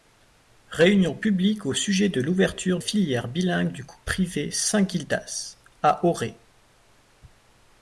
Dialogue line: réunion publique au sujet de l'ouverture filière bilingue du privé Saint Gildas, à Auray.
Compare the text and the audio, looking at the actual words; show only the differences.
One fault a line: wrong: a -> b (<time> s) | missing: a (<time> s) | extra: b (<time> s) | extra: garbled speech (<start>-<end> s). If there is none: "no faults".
no faults